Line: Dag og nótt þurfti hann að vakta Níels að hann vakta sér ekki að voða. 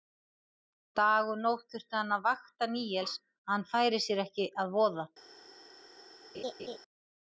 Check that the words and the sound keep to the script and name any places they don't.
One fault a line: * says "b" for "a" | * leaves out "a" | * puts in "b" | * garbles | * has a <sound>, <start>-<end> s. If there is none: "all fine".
* says "færi" for "vakta"
* has a laugh, 6.3-6.8 s